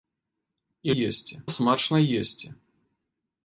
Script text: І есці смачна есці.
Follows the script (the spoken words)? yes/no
yes